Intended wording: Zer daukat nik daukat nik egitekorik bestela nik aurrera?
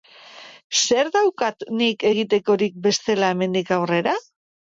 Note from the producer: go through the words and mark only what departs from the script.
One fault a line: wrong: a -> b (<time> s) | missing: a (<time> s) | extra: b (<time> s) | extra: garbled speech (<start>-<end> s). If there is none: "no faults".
missing: daukat nik (2.1 s)
wrong: nik -> hemendik (3.4 s)